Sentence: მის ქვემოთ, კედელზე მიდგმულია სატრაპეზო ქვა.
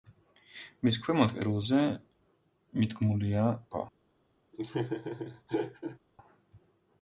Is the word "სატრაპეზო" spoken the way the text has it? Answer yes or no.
no